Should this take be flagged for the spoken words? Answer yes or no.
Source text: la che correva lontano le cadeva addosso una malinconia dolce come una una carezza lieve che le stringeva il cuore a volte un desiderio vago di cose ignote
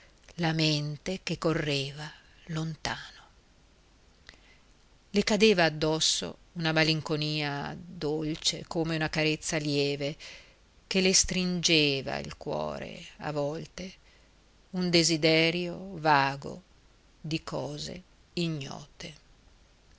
yes